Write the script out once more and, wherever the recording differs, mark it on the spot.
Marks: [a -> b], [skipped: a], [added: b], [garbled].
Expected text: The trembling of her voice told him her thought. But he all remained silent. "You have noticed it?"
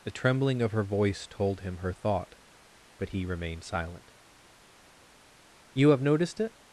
The trembling of her voice told him her thought. But he [skipped: all] remained silent. "You have noticed it?"